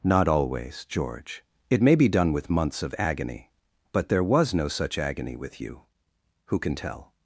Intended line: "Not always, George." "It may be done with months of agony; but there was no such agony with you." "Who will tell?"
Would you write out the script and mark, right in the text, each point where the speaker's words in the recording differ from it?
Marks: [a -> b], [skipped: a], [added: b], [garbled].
"Not always, George." "It may be done with months of agony; but there was no such agony with you." "Who [will -> can] tell?"